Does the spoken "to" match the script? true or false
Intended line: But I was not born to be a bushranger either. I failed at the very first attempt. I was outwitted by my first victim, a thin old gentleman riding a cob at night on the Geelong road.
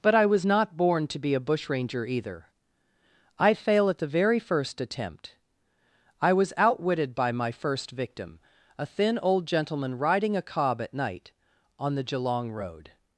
true